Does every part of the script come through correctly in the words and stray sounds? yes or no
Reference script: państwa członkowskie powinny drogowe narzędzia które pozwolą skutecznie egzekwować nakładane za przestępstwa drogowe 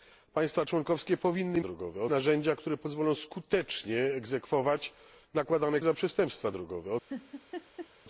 no